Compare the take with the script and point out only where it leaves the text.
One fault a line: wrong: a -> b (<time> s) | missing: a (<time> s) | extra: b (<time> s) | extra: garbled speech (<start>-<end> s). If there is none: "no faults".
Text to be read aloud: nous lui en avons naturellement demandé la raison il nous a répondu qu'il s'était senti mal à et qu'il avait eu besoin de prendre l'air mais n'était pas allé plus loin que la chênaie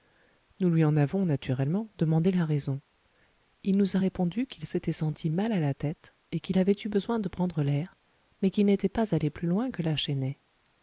extra: la tête (5.6 s)
extra: qu'il (8.5 s)